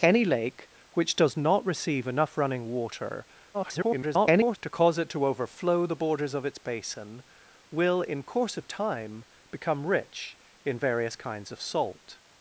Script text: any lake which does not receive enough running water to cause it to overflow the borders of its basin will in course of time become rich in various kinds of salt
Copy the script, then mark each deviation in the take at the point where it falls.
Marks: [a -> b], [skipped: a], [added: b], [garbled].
any lake which does not receive enough running water [garbled] to cause it to overflow the borders of its basin will in course of time become rich in various kinds of salt